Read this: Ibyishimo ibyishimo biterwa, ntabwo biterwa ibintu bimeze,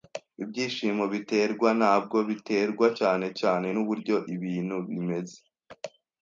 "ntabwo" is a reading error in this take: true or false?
false